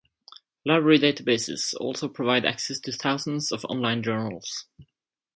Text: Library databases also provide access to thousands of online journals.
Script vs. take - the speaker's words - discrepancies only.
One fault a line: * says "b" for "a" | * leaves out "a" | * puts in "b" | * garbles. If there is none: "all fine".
all fine